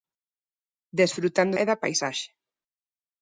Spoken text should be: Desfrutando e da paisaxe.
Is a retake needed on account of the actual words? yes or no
no